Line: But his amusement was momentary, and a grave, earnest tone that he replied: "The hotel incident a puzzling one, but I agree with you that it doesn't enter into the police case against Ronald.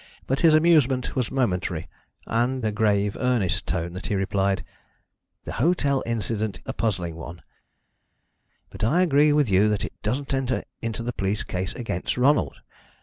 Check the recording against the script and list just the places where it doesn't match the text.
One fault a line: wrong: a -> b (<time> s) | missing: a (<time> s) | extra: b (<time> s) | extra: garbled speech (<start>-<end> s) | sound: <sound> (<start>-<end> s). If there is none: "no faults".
no faults